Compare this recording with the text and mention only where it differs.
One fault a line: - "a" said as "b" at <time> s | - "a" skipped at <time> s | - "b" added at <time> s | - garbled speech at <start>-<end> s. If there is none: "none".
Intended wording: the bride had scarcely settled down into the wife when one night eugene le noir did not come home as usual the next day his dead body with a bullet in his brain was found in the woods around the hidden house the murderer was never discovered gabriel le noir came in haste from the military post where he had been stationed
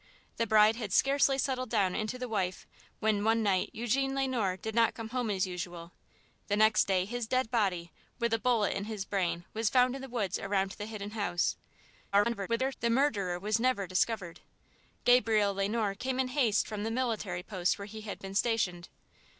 - garbled speech at 12.1-12.7 s